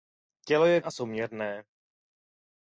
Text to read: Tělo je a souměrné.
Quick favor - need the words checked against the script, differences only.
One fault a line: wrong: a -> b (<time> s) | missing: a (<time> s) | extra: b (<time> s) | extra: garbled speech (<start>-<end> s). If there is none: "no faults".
no faults